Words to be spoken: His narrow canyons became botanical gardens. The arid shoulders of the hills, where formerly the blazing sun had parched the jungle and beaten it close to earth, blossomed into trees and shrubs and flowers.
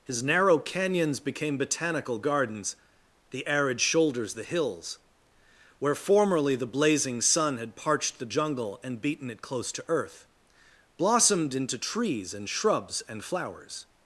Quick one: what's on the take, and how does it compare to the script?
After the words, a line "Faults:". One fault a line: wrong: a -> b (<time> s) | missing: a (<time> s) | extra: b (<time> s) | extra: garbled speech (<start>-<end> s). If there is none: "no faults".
His narrow canyons became botanical gardens. The arid shoulders the hills, where formerly the blazing sun had parched the jungle and beaten it close to earth, blossomed into trees and shrubs and flowers.
Faults:
missing: of (4.3 s)